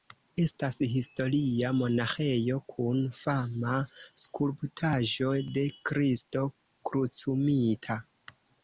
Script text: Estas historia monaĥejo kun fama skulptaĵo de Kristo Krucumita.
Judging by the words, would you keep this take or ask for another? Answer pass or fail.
pass